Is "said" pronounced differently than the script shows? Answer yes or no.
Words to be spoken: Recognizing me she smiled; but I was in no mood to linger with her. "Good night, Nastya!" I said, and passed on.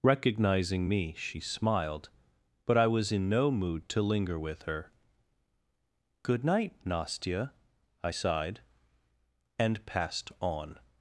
yes